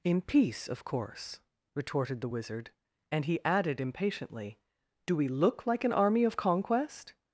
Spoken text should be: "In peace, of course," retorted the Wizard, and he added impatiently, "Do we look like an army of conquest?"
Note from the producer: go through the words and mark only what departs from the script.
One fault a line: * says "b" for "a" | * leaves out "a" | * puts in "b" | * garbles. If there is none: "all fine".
all fine